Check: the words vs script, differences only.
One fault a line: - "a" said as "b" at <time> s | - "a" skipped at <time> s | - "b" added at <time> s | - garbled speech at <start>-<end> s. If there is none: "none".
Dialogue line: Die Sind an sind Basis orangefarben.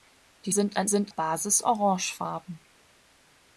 none